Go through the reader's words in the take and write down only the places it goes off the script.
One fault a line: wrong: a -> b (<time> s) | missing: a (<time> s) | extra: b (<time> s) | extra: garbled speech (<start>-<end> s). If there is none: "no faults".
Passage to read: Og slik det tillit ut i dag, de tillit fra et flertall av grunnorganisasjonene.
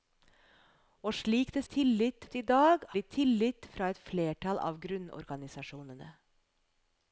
no faults